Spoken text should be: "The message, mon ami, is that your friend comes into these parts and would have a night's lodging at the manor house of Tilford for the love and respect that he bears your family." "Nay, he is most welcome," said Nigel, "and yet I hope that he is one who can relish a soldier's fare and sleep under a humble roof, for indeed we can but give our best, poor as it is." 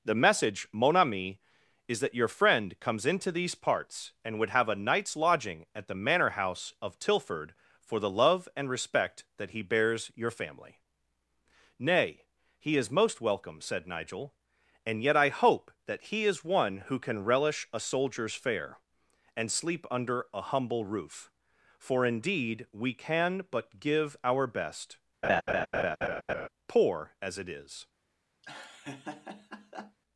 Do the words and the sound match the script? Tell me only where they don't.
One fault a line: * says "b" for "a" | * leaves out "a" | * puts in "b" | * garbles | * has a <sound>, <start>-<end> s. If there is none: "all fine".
* has a laugh, 25.2-26.5 s
* has a laugh, 28.4-30.0 s